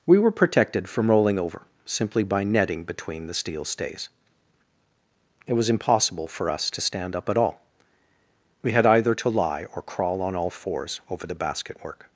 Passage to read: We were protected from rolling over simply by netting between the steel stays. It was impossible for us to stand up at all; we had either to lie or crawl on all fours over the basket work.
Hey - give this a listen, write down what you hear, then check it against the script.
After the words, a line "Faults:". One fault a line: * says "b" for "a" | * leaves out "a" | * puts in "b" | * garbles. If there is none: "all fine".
We were protected from rolling over simply by netting between the steel stays. It was impossible for us to stand up at all; we had either to lie or crawl on all fours over the basket work.
Faults:
all fine